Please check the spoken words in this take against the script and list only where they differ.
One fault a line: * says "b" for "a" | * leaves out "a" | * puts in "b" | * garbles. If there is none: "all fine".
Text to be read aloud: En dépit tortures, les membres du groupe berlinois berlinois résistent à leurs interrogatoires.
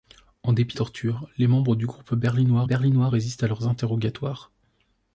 all fine